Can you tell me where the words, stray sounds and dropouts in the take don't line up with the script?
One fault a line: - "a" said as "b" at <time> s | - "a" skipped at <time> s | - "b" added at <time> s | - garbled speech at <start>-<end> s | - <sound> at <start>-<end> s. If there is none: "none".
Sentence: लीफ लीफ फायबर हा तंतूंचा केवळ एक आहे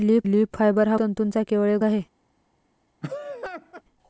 - laugh at 3.0-3.8 s